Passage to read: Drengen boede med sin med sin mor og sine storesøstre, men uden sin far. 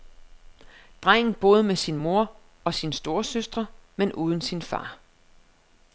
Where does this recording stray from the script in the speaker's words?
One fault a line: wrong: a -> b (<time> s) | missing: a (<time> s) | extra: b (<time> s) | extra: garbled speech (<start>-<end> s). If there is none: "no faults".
missing: med sin (2.0 s)